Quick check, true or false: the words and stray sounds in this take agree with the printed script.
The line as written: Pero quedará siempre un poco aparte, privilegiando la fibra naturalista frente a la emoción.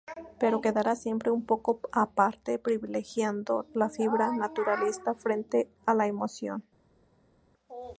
true